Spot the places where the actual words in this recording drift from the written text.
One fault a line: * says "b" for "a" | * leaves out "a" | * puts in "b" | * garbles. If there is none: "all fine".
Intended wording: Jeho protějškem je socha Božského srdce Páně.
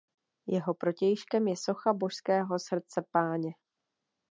all fine